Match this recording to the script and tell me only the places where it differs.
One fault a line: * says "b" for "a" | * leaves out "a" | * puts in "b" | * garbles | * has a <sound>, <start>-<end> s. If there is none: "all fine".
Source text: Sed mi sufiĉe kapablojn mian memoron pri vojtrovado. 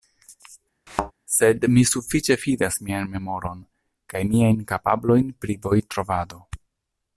* has a thud, 0.9-1.1 s
* says "fidas" for "kapablojn"
* puts in "kaj miajn kapablojn"